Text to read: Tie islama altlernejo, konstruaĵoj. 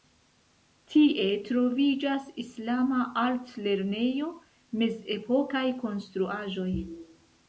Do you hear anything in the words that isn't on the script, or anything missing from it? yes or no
yes